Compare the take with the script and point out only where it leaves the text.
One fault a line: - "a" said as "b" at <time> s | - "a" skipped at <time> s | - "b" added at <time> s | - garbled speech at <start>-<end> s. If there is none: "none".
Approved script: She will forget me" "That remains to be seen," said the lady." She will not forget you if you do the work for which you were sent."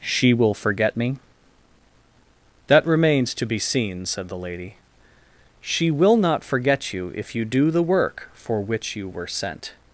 none